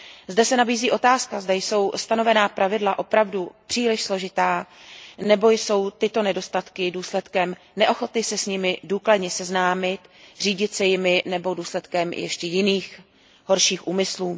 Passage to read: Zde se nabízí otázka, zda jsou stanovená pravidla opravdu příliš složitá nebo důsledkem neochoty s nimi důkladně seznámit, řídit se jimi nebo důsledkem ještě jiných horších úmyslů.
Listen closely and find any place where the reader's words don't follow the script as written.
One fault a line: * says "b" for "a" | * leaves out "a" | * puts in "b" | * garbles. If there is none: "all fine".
* puts in "jsou tyto nedostatky"
* puts in "se"